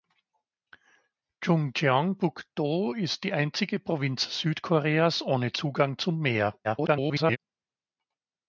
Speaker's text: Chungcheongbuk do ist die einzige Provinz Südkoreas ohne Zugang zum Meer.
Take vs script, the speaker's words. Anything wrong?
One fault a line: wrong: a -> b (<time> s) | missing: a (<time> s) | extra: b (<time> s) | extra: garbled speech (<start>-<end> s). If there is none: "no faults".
extra: garbled speech (6.6-7.4 s)